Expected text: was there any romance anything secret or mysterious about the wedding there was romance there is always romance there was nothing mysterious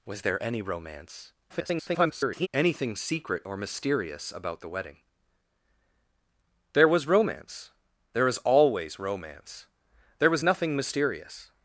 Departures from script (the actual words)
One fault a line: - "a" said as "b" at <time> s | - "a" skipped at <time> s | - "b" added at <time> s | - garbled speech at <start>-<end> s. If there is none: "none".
- garbled speech at 1.5-2.5 s